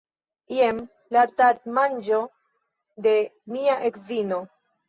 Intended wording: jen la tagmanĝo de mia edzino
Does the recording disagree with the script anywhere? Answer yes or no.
no